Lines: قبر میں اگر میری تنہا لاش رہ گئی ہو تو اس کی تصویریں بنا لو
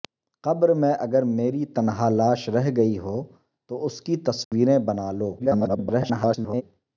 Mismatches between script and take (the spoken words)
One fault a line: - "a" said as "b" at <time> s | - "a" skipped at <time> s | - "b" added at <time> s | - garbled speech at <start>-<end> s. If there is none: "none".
- garbled speech at 5.4-6.6 s